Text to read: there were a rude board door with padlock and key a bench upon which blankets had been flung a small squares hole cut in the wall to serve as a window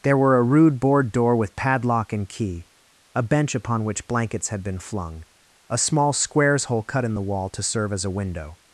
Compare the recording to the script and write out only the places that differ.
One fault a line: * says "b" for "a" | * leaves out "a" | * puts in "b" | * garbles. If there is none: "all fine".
all fine